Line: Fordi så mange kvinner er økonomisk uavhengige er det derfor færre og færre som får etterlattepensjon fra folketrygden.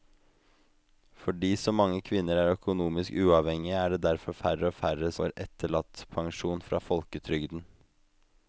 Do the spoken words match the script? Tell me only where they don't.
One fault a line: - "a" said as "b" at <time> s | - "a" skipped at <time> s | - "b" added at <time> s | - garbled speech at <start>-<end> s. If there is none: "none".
- "som" skipped at 5.1 s